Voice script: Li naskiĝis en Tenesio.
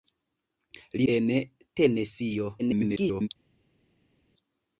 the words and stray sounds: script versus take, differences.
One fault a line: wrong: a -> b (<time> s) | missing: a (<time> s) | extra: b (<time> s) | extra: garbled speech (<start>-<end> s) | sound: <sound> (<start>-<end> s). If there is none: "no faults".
missing: naskiĝis (1.1 s)
extra: garbled speech (2.6-3.3 s)